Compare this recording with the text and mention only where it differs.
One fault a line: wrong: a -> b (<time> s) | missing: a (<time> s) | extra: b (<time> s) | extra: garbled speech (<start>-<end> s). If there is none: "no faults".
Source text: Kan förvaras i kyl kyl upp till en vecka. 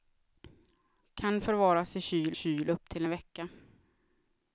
no faults